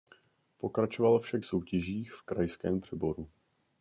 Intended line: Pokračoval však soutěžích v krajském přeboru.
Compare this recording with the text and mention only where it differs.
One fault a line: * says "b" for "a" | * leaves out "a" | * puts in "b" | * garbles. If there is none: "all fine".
all fine